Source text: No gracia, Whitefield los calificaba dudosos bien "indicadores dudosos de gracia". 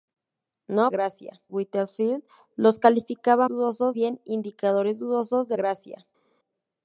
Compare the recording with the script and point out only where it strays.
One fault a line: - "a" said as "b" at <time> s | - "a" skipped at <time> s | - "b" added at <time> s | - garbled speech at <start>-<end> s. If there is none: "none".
none